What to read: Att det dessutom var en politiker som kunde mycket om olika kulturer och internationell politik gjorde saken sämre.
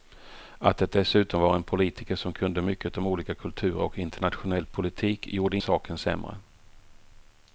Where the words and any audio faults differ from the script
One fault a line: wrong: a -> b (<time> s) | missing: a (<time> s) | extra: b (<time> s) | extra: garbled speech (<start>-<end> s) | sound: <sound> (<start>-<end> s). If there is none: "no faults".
no faults